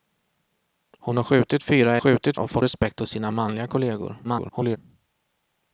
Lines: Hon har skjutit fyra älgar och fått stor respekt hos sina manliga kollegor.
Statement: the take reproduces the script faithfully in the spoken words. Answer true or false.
false